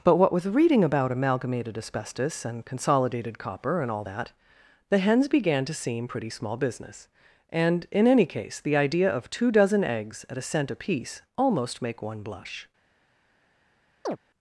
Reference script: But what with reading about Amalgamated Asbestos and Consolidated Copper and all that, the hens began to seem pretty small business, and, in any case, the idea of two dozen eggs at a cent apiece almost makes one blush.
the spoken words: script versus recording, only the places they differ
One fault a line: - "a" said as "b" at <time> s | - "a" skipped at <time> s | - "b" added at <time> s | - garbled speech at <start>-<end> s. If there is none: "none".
- "makes" said as "make" at 11.8 s